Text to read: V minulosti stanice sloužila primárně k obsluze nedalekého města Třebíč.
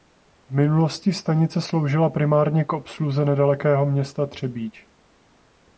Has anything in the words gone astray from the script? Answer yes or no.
no